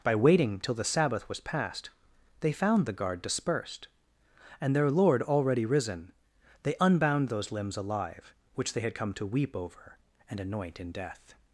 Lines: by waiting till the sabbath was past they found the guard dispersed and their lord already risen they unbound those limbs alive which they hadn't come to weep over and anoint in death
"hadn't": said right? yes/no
no